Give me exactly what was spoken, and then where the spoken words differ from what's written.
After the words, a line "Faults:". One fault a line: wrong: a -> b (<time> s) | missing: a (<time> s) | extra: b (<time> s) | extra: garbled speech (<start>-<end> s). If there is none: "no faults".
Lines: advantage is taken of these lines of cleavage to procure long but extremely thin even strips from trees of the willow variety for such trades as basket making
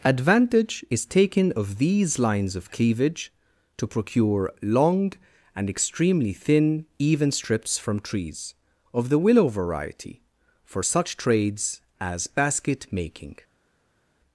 advantage is taken of these lines of cleavage to procure long and extremely thin even strips from trees of the willow variety for such trades as basket making
Faults:
wrong: but -> and (5.6 s)